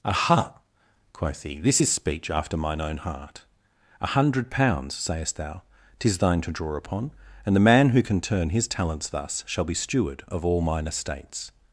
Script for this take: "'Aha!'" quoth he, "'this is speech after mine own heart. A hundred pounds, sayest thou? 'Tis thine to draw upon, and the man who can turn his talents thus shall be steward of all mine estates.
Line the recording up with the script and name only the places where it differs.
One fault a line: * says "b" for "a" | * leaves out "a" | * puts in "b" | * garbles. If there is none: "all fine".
all fine